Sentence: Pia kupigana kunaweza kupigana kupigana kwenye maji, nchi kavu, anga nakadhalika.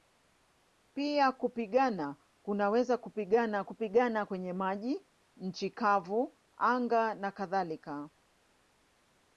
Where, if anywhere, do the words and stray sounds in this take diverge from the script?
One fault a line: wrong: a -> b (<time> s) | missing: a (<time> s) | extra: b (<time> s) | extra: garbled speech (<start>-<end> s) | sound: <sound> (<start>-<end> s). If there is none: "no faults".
no faults